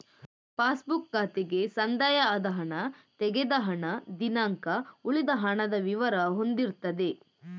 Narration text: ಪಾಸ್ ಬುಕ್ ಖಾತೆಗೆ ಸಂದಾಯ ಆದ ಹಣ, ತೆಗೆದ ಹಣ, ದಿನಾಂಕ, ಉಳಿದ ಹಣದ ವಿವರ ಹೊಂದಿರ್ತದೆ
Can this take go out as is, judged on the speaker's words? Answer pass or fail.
pass